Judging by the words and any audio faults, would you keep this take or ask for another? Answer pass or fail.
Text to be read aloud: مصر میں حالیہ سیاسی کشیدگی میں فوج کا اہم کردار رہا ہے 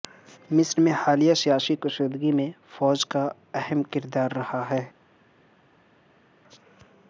pass